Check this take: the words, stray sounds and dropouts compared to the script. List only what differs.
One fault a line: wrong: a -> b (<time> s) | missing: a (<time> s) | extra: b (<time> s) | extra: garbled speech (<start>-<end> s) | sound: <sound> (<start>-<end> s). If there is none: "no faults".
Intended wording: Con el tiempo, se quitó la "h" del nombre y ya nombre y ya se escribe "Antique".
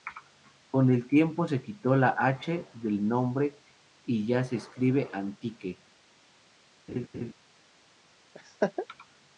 missing: nombre y ya (4.4 s)
sound: laugh (6.9-7.3 s)
sound: laugh (8.3-8.9 s)